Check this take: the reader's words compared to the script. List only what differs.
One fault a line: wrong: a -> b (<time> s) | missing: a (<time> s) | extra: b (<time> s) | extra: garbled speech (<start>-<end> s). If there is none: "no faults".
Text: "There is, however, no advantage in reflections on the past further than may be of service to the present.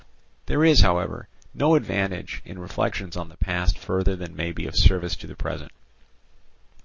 no faults